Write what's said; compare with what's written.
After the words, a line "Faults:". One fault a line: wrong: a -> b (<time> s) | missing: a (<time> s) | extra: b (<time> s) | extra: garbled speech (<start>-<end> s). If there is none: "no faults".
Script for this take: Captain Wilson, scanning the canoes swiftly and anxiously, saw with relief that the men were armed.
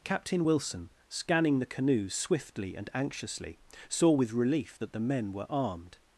Captain Wilson, scanning the canoes swiftly and anxiously, saw with relief that the men were armed.
Faults:
no faults